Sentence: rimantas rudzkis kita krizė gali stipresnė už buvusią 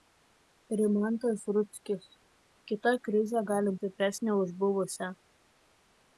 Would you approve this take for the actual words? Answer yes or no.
yes